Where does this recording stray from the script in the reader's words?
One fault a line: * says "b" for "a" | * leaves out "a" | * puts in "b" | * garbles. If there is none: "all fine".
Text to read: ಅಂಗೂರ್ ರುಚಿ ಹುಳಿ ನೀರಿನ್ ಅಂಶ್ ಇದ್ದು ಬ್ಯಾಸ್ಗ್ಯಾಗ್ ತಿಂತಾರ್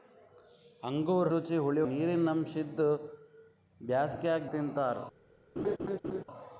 all fine